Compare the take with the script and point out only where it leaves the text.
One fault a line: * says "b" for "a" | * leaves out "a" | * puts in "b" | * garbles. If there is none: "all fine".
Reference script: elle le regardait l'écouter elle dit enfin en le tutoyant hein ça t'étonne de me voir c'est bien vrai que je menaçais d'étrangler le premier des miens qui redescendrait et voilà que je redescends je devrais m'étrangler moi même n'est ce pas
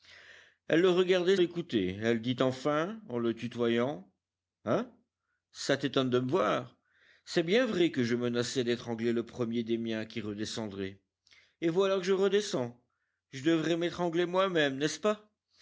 all fine